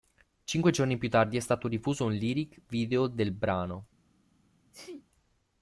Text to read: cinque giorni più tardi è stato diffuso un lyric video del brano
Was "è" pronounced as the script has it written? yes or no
yes